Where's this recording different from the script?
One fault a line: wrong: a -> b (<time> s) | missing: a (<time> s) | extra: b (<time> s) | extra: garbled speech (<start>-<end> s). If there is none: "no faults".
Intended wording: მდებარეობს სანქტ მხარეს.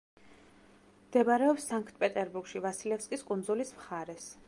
extra: პეტერბურგში ვასილევსკის კუნძულის (2.1 s)